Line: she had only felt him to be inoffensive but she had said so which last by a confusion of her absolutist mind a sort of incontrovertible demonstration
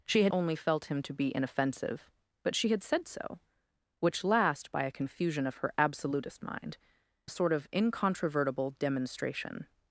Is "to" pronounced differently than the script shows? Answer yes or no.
no